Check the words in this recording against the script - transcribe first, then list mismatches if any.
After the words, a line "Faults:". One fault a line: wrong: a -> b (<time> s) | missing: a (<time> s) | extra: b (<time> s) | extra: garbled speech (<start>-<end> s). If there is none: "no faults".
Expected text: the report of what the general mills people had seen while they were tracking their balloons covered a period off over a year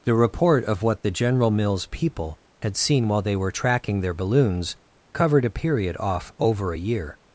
the report of what the general mills people had seen while they were tracking their balloons covered a period off over a year
Faults:
no faults